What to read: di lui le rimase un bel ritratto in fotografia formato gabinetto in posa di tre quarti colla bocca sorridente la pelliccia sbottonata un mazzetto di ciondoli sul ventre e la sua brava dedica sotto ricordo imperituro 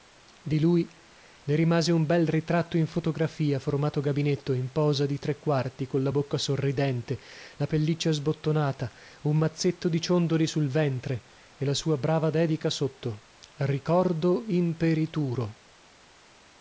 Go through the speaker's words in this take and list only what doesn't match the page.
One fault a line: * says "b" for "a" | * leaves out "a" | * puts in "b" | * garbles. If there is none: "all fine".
all fine